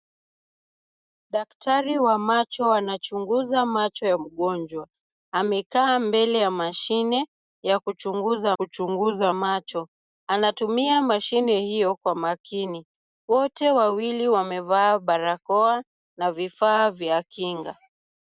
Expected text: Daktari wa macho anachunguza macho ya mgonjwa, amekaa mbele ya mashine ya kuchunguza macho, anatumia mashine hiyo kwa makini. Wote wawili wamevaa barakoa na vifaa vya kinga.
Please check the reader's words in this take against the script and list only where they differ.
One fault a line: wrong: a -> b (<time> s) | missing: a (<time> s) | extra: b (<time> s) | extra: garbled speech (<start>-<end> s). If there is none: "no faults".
extra: kuchunguza (8.5 s)